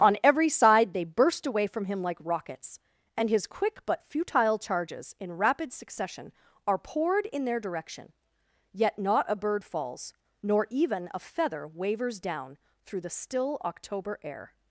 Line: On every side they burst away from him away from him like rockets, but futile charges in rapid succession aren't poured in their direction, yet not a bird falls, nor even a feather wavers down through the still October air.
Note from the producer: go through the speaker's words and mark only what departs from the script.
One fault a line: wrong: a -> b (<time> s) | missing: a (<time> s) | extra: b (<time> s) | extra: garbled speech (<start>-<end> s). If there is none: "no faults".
wrong: away from him like rockets -> like rockets and his quick (2.0 s)
wrong: aren't -> are (6.7 s)